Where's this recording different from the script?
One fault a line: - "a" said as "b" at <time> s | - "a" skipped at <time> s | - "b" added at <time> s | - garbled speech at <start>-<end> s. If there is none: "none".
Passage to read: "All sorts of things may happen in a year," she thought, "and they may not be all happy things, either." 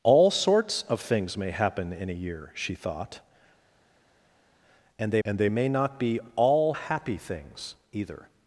- "and they" added at 5.2 s